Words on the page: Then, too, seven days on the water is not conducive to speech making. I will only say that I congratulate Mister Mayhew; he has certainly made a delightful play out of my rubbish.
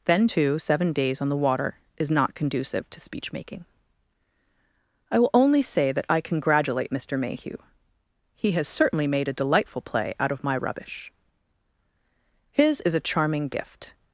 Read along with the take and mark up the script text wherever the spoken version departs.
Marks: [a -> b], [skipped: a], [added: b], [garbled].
Then, too, seven days on the water is not conducive to speech making. I will only say that I congratulate Mister Mayhew; he has certainly made a delightful play out of my rubbish. [added: His is a charming gift]